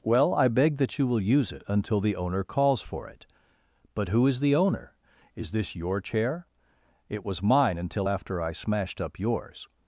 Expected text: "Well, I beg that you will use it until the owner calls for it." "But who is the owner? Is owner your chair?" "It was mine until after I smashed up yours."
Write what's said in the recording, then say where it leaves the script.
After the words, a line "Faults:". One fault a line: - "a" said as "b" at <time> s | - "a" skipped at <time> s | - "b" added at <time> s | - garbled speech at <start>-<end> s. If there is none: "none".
"Well, I beg that you will use it until the owner calls for it." "But who is the owner? Is this your chair?" "It was mine until after I smashed up yours."
Faults:
- "owner" said as "this" at 5.5 s